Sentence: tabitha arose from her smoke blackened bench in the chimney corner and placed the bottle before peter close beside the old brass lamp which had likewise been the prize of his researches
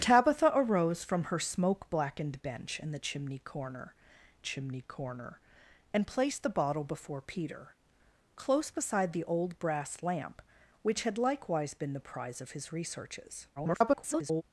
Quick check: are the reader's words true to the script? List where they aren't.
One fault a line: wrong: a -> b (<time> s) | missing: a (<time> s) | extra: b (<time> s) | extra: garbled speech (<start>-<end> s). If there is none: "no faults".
extra: chimney corner (4.4 s)
extra: garbled speech (13.6-14.4 s)